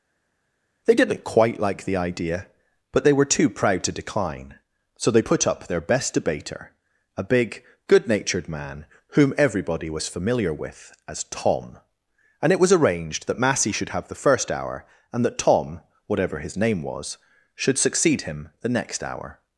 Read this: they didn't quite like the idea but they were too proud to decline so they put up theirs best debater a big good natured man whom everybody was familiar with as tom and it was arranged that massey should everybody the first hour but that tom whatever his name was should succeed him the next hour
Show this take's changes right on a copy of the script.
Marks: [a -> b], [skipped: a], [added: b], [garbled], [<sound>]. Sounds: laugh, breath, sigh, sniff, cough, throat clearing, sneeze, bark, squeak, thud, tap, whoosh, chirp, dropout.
they didn't quite like the idea but they were too proud to decline so they put up [theirs -> their] best debater a big good natured man whom everybody was familiar with as tom and it was arranged that massey should [everybody -> have] the first hour [but -> and] that tom whatever his name was should succeed him the next hour